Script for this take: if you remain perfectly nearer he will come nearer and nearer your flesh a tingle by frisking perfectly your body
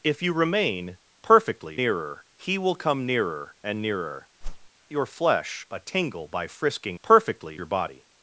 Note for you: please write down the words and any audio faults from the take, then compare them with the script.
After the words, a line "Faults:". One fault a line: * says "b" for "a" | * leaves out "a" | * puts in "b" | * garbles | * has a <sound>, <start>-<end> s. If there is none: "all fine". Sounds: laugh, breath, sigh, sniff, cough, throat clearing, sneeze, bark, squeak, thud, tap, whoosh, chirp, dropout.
if you remain perfectly nearer he will come nearer and nearer your flesh a tingle by frisking perfectly your body
Faults:
* has a whoosh, 4.4-4.7 s